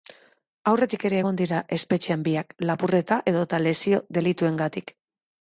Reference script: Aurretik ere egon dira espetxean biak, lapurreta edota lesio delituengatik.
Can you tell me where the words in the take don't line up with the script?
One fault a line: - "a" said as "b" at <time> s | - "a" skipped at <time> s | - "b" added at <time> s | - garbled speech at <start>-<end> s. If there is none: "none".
none